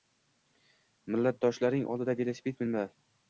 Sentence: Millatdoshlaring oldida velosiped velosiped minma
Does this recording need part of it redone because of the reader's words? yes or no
yes